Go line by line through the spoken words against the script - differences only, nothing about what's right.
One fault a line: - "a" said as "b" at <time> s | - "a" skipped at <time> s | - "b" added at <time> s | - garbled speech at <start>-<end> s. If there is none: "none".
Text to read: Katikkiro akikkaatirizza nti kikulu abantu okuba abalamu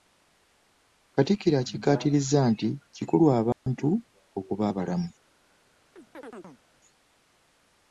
none